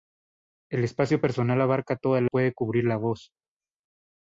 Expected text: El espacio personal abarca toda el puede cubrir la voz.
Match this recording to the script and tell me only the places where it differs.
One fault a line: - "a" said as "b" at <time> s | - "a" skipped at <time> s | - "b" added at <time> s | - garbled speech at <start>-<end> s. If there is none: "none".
none